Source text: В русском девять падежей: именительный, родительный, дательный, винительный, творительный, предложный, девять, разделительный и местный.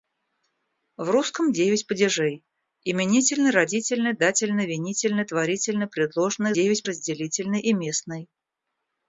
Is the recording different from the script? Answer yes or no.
no